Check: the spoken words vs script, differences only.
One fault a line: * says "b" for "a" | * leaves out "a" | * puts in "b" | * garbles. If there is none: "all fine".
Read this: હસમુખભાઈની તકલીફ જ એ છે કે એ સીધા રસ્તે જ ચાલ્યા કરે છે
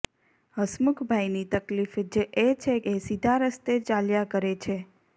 * leaves out "કે"
* leaves out "જ"